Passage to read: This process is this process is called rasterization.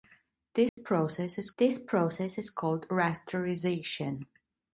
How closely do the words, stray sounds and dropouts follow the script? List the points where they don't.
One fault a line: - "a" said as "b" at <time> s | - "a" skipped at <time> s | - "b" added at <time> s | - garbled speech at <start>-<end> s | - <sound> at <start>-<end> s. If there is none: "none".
- dropout at 0.7-0.8 s